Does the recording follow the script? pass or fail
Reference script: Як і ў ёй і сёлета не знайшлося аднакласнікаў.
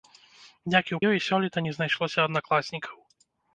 pass